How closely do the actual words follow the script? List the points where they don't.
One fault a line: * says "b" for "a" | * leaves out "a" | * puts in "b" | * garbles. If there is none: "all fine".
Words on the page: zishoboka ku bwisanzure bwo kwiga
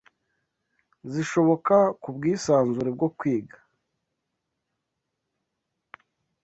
all fine